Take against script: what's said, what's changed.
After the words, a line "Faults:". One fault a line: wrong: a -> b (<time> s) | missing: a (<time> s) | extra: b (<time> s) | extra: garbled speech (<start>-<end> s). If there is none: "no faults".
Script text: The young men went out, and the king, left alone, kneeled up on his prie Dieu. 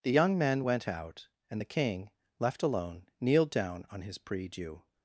The young men went out, and the king, left alone, kneeled down on his prie Dieu.
Faults:
wrong: up -> down (3.5 s)